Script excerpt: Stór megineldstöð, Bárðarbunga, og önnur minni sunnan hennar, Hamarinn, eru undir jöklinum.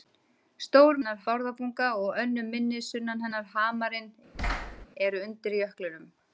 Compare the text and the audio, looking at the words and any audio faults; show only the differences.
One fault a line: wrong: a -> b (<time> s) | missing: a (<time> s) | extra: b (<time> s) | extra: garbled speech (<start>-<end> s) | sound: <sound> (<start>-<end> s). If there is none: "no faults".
wrong: megineldstöð -> hennar (1.0 s)
sound: thud (4.3-4.9 s)